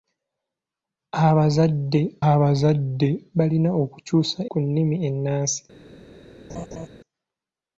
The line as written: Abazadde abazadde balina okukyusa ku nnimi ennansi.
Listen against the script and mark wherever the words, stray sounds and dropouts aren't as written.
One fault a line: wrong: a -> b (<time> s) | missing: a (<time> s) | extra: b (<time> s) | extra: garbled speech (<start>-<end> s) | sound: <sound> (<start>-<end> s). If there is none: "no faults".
sound: laugh (6.5-6.9 s)